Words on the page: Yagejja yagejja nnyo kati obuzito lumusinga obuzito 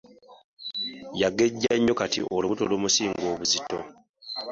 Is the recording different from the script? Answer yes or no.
yes